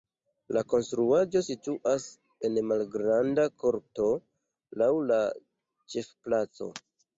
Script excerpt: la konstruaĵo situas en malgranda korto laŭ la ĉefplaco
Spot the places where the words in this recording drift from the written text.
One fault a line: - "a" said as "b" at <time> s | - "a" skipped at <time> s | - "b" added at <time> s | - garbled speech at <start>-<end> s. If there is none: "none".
none